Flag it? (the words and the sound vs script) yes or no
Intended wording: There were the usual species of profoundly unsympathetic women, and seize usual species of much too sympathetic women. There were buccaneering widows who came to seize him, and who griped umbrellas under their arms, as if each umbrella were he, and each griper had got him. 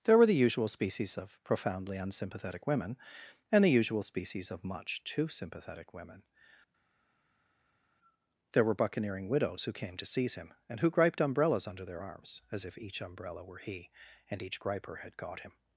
yes